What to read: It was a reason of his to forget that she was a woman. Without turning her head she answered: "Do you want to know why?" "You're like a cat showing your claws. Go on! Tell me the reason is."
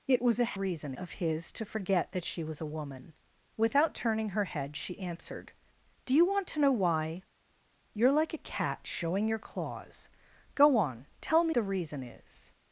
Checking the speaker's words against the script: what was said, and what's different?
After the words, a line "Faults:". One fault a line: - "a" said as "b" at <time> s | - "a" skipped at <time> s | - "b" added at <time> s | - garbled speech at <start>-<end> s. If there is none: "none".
It was a reason of his to forget that she was a woman. Without turning her head she answered: "Do you want to know why?" "You're like a cat showing your claws. Go on! Tell me the reason is."
Faults:
none